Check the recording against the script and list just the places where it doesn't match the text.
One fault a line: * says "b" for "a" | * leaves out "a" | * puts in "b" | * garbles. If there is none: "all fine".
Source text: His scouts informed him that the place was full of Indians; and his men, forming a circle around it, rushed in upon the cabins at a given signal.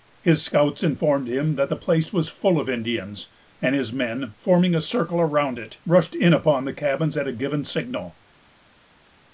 all fine